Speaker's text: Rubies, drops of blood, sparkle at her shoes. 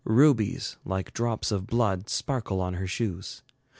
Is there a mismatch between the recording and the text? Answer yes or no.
yes